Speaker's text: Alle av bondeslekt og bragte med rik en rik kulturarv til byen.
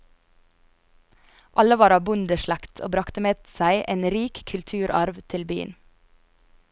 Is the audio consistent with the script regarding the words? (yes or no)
no